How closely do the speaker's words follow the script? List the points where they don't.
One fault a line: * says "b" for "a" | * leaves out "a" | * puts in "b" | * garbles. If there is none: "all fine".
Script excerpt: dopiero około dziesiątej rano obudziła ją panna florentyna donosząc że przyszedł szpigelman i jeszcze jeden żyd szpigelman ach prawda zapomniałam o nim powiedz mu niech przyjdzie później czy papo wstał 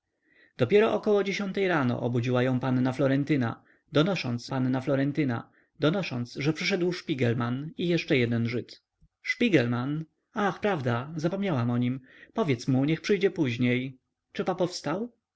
* puts in "panna florentyna donosząc"